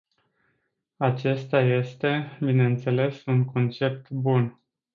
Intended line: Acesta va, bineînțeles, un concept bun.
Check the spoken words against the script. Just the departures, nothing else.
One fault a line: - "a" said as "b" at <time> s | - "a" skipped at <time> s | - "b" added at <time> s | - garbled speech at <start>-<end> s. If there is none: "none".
- "va" said as "este" at 1.6 s